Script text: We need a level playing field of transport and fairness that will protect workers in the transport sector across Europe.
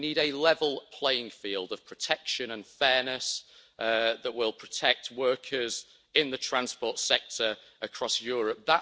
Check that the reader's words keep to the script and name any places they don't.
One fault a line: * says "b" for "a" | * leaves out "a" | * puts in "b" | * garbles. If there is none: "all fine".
* says "protection" for "transport"